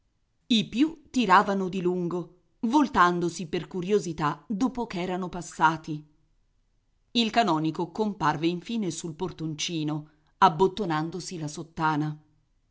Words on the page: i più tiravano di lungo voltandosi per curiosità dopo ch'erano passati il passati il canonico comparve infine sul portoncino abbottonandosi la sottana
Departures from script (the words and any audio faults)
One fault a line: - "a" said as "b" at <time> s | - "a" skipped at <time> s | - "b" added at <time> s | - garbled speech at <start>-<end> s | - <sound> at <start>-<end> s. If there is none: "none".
- "passati il" skipped at 7.3 s